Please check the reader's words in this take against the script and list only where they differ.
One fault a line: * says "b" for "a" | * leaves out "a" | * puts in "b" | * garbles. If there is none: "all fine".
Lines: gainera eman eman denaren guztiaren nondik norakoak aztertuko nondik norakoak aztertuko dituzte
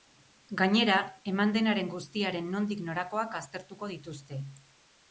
* leaves out "eman"
* leaves out "nondik norakoak aztertuko"